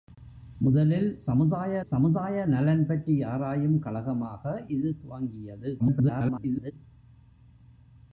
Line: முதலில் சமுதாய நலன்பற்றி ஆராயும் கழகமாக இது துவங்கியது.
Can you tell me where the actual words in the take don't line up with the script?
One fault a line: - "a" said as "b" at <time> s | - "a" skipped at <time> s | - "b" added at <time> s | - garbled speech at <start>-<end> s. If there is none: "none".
- "சமுதாய" added at 1.8 s
- garbled speech at 5.8-6.7 s